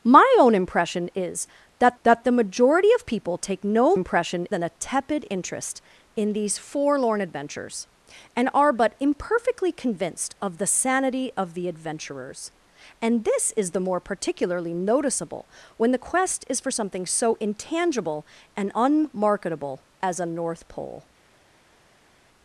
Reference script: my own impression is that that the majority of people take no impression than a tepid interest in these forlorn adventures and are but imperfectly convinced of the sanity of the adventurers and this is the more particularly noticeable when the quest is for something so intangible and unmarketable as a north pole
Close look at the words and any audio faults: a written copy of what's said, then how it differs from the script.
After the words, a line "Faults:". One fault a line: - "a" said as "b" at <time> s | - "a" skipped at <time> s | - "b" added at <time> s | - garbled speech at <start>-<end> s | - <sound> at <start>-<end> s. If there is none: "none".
my own impression is that that the majority of people take no impression than a tepid interest in these forlorn adventures and are but imperfectly convinced of the sanity of the adventurers and this is the more particularly noticeable when the quest is for something so intangible and unmarketable as a north pole
Faults:
none